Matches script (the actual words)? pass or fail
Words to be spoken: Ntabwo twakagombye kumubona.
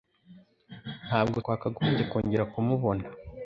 fail